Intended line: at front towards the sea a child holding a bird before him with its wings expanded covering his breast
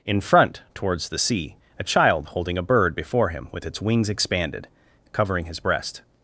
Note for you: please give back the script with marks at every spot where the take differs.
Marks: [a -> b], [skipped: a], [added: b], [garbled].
[at -> in] front towards the sea a child holding a bird before him with its wings expanded covering his breast